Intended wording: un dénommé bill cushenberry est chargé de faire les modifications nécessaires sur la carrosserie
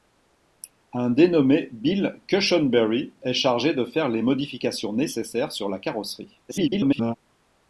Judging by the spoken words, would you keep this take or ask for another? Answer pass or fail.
fail